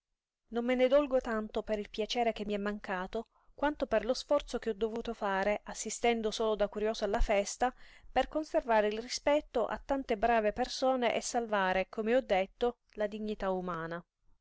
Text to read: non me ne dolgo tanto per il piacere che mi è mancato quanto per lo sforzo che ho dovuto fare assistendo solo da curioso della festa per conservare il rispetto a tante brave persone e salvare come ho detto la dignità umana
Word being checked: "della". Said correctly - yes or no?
no